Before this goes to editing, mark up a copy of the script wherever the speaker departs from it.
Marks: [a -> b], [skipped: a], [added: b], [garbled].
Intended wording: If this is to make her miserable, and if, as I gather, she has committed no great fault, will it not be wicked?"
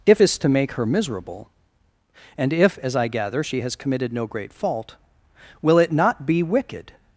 If [skipped: this] is to make her miserable, and if, as I gather, she has committed no great fault, will it not be wicked?"